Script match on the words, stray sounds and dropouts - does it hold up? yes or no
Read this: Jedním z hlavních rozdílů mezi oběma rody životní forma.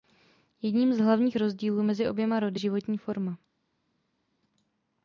yes